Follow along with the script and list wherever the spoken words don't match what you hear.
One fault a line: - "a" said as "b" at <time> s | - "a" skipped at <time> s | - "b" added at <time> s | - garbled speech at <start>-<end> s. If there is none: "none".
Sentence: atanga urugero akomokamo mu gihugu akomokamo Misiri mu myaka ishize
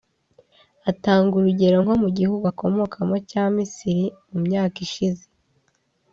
- "akomokamo" said as "nko" at 1.8 s
- "cya" added at 3.3 s